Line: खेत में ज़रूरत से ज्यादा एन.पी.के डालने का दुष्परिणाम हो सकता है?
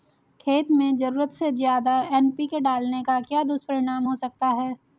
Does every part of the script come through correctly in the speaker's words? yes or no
no